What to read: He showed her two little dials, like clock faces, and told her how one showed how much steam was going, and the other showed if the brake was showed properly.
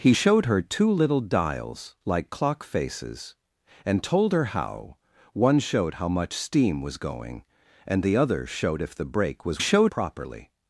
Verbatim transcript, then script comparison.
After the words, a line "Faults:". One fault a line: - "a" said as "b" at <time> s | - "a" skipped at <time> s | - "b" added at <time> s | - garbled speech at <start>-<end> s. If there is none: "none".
He showed her two little dials, like clock faces, and told her how one showed how much steam was going, and the other showed if the brake was showed properly.
Faults:
none